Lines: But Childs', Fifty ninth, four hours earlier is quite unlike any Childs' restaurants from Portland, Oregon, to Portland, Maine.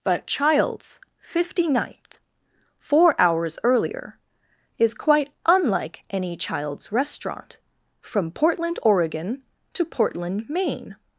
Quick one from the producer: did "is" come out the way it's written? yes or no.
yes